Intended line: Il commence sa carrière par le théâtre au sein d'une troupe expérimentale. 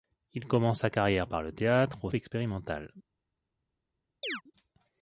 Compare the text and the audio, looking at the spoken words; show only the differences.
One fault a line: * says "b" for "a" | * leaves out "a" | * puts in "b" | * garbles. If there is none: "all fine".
* leaves out "sein d'une troupe"